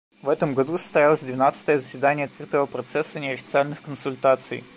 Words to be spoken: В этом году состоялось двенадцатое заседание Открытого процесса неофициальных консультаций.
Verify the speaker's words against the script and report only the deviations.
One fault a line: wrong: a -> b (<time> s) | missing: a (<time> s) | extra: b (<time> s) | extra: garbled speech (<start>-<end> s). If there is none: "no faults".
no faults